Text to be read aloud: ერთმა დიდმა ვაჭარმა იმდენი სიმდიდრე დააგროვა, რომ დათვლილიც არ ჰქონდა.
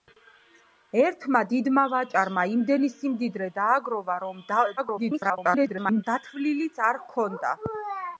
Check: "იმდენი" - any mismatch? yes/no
no